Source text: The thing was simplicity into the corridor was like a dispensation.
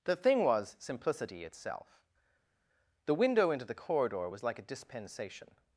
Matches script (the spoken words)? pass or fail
fail